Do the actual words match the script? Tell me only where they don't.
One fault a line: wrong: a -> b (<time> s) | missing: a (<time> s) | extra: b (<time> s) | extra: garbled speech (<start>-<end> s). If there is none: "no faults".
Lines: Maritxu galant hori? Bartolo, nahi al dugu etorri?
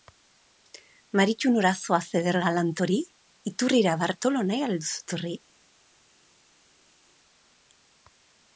extra: nora zoaz eder (1.6 s)
extra: Iturrira (3.5 s)
wrong: dugu -> duzu (4.8 s)